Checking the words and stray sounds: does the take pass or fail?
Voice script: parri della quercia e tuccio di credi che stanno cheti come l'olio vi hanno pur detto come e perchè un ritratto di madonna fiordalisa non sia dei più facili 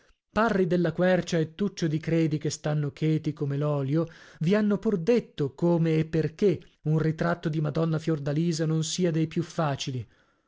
pass